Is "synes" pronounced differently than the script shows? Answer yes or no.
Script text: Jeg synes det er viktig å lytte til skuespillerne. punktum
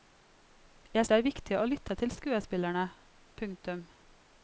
yes